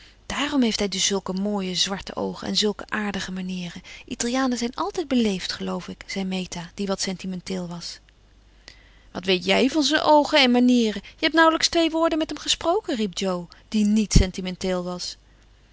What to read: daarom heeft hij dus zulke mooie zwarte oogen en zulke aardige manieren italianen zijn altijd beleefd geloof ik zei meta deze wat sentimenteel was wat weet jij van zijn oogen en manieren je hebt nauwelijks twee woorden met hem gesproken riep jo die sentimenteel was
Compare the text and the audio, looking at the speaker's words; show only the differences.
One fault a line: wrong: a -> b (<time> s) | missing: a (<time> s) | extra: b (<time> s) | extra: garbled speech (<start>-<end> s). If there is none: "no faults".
wrong: deze -> die (6.7 s)
extra: niet (13.8 s)